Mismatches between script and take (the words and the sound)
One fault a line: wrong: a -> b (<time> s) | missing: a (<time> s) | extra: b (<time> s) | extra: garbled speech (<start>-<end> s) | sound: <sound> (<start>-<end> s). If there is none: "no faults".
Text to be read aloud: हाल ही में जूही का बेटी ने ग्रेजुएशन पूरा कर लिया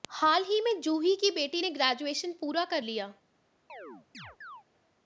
wrong: का -> की (1.1 s)
sound: chirp (3.7-4.6 s)